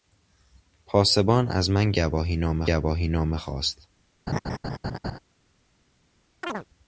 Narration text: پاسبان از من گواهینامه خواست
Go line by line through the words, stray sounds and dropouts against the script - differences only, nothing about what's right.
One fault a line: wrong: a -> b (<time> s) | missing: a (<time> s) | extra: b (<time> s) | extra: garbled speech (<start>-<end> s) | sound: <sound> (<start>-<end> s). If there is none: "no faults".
extra: گواهینامه (2.6 s)
sound: laugh (4.3-5.2 s)
sound: chirp (6.4-6.7 s)